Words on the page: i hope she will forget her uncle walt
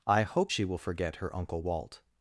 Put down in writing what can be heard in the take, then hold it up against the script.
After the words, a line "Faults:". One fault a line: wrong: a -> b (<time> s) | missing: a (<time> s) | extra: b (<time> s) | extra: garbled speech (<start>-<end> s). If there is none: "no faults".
i hope she will forget her uncle walt
Faults:
no faults